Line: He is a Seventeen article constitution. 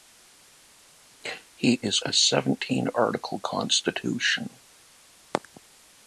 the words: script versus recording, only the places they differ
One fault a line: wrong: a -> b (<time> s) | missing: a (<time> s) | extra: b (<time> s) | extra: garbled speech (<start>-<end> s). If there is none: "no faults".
no faults